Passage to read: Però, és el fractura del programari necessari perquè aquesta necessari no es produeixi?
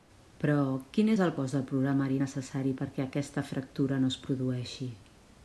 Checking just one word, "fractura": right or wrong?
wrong